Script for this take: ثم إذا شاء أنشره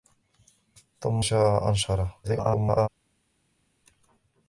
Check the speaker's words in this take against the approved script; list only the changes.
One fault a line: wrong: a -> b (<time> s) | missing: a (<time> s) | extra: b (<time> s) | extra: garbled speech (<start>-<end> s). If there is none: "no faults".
missing: إذا (1.2 s)
extra: garbled speech (2.2-2.9 s)